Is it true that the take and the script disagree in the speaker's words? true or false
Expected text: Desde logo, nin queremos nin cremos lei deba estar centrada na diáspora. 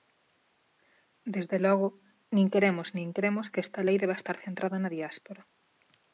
true